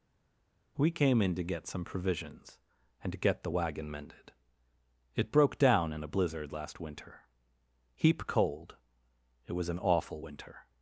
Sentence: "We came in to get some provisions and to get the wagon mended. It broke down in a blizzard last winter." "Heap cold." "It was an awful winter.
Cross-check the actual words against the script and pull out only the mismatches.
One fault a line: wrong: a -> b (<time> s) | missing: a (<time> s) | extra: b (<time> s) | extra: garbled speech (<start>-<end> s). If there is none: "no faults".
no faults